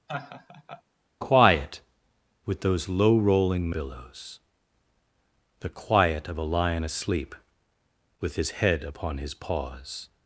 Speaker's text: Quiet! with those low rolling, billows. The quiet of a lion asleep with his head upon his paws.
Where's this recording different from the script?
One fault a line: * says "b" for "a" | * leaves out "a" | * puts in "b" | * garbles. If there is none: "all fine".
all fine